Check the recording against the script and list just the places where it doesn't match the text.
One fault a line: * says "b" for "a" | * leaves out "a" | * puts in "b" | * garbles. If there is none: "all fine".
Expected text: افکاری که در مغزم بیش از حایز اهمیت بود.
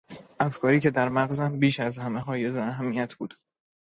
* puts in "همه"